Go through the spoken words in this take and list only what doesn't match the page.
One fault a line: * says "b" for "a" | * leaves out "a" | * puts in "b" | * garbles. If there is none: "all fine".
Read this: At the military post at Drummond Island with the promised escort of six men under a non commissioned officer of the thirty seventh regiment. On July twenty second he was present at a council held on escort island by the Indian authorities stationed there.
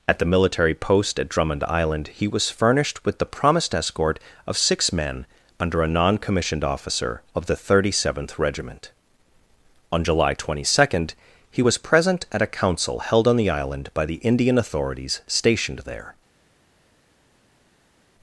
* puts in "he was furnished"
* says "the" for "escort"